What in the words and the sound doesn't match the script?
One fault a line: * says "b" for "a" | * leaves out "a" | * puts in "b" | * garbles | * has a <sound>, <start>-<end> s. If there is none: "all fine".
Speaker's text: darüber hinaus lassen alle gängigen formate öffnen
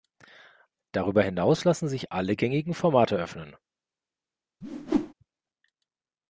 * puts in "sich"
* has a whoosh, 4.6-5.1 s